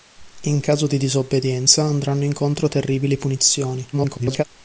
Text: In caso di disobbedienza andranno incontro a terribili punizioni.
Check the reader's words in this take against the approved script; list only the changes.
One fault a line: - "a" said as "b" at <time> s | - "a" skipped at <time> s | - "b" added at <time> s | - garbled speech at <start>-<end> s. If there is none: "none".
- garbled speech at 3.9-4.4 s